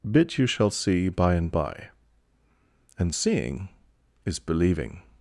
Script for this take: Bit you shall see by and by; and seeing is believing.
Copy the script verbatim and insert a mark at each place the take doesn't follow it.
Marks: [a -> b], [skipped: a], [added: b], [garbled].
Bit you shall see by and by; and seeing is believing.